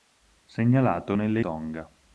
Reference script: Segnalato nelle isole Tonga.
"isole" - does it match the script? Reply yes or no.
no